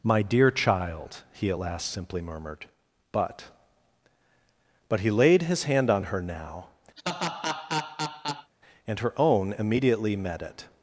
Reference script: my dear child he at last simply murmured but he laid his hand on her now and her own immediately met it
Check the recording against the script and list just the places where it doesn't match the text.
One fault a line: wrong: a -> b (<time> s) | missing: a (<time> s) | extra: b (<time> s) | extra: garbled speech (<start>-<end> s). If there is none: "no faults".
extra: but (4.9 s)